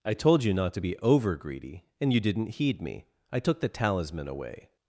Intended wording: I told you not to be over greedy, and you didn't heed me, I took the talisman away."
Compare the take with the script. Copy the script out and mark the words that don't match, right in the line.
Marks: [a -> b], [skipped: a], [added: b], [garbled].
I told you not to be over greedy, and you didn't heed me, I took the talisman away."